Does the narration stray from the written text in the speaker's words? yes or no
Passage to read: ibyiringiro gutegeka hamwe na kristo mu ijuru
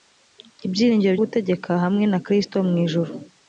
no